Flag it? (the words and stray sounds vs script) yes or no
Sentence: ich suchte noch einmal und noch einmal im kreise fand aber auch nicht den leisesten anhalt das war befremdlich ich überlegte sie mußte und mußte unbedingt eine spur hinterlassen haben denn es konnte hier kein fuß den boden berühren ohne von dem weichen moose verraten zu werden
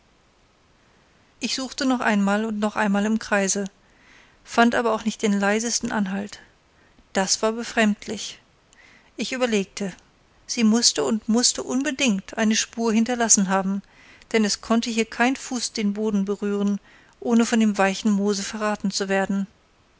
no